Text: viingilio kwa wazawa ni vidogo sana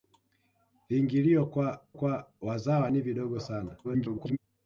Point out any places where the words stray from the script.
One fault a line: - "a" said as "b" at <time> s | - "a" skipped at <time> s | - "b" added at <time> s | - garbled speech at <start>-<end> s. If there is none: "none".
- "kwa" added at 1.9 s
- garbled speech at 3.8-4.4 s